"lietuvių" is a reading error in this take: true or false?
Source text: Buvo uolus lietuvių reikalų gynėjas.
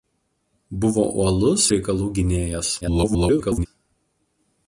true